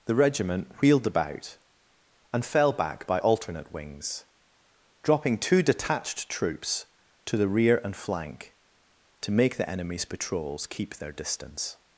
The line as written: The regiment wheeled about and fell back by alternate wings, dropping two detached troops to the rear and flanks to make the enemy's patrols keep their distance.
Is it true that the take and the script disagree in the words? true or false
true